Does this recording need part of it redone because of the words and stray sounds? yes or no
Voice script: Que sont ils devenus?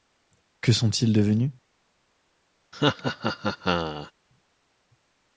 yes